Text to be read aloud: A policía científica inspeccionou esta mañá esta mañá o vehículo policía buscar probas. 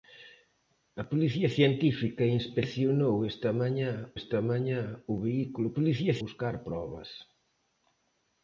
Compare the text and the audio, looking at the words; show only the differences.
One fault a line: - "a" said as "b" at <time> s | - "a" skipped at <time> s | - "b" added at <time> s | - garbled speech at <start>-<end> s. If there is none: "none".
none